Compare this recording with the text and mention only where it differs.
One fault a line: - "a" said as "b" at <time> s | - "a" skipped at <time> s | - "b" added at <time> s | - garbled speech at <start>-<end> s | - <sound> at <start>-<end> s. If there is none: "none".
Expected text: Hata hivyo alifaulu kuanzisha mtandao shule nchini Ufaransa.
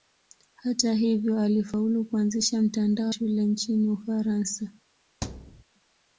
- thud at 5.2-5.6 s